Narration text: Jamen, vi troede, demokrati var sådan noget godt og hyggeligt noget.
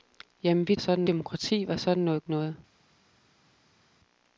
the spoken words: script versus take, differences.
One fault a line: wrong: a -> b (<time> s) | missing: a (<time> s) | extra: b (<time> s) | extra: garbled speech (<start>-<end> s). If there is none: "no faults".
wrong: troede -> sådan (0.8 s)
missing: godt og hyggeligt (2.3 s)